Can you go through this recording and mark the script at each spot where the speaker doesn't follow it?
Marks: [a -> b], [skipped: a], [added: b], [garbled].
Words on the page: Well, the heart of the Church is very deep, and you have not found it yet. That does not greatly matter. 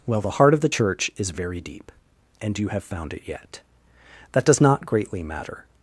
Well, the heart of the Church is very deep, and you have [skipped: not] found it yet. That does not greatly matter.